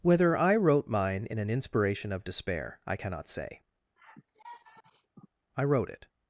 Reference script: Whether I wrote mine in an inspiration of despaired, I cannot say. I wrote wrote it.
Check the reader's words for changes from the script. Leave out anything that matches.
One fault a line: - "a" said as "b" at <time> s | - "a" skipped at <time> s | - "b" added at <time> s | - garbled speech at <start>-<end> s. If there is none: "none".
- "despaired" said as "despair" at 2.2 s
- "wrote" skipped at 5.9 s